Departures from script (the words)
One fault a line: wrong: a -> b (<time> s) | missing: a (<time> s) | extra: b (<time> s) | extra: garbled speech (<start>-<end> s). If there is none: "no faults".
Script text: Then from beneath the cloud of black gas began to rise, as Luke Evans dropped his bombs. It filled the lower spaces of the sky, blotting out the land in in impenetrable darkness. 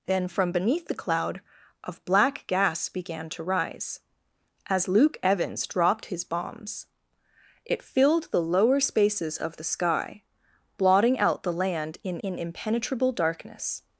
no faults